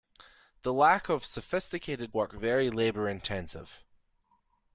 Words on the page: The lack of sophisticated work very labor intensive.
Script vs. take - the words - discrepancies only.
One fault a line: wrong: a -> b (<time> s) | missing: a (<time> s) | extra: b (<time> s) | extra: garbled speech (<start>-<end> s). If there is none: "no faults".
no faults